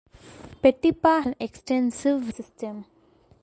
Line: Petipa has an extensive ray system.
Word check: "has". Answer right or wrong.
wrong